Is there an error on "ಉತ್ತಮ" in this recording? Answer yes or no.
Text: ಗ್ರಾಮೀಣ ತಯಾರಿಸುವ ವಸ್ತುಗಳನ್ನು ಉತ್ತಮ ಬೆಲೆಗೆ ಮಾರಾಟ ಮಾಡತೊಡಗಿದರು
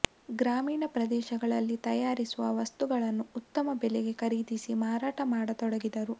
no